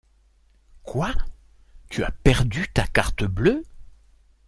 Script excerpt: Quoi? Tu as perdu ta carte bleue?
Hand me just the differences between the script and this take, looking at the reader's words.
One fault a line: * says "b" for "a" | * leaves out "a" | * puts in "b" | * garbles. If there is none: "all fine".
all fine